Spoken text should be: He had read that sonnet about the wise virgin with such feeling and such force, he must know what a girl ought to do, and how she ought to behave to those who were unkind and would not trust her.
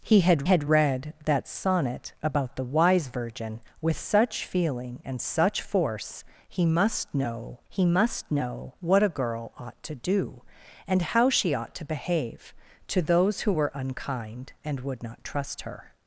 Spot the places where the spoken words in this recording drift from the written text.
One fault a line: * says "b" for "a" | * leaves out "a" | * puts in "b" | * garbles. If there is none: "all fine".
* puts in "had"
* puts in "he must know"